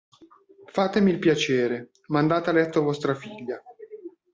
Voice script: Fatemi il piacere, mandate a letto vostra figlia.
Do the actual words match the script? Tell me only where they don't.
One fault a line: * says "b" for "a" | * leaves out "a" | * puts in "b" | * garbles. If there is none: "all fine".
all fine